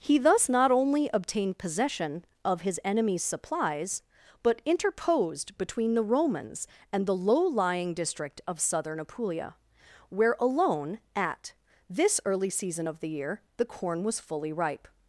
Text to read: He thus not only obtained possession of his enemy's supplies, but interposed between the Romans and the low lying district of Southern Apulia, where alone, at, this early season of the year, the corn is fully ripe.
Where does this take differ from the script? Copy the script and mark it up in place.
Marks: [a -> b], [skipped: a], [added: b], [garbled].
He thus not only obtained possession of his enemy's supplies, but interposed between the Romans and the low lying district of Southern Apulia, where alone, at, this early season of the year, the corn [is -> was] fully ripe.